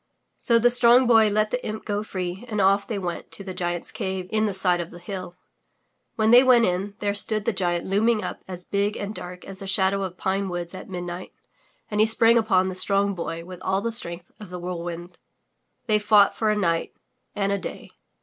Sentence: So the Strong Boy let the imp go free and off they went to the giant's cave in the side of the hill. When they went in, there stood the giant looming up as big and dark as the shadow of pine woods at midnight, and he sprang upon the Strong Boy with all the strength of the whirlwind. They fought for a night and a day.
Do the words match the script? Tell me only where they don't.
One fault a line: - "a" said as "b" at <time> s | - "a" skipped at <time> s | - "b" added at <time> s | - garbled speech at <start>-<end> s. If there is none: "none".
none